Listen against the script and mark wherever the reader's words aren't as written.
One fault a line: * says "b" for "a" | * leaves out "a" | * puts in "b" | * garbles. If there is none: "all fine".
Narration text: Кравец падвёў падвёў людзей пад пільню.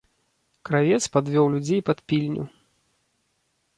* leaves out "падвёў"